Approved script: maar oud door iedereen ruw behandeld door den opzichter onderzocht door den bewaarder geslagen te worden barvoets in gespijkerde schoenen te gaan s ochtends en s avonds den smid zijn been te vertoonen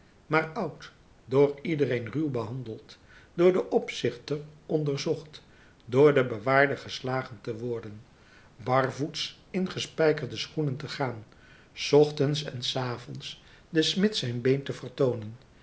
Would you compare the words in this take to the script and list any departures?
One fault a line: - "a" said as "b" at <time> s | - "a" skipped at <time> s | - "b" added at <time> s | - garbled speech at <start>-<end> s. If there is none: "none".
none